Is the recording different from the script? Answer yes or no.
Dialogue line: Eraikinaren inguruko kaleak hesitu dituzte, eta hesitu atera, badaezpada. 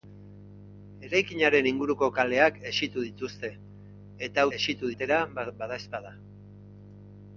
no